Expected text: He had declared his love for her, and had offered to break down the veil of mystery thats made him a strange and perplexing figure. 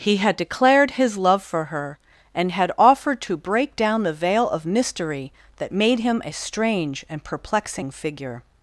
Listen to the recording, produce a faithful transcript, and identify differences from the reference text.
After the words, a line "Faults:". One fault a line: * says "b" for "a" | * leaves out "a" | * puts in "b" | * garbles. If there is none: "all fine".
He had declared his love for her, and had offered to break down the veil of mystery that made him a strange and perplexing figure.
Faults:
* says "that" for "thats"